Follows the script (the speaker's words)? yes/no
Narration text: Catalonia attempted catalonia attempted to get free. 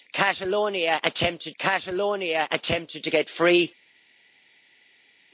yes